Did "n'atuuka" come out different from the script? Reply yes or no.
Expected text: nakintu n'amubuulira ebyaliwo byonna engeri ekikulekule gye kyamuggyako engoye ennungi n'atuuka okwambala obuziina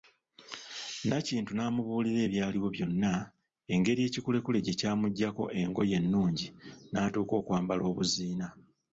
no